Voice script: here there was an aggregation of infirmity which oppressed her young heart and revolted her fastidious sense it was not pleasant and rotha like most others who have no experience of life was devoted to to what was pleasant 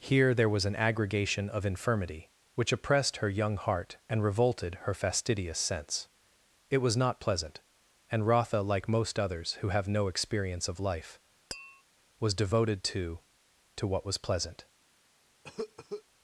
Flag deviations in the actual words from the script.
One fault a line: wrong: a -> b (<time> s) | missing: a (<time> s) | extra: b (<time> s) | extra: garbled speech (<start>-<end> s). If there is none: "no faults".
no faults